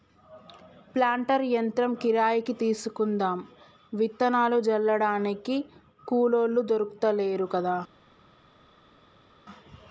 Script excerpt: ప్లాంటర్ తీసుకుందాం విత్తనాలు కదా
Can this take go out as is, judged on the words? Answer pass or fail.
fail